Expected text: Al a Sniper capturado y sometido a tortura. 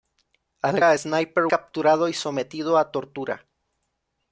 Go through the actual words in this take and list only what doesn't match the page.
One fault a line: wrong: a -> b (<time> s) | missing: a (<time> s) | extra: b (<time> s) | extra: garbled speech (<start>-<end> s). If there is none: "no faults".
no faults